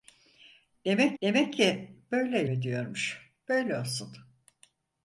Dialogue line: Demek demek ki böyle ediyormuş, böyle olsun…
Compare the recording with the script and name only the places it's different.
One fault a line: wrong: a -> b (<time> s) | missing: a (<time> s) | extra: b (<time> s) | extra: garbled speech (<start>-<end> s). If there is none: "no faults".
no faults